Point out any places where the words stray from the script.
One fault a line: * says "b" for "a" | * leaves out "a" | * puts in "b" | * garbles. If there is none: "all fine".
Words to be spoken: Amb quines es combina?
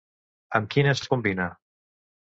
all fine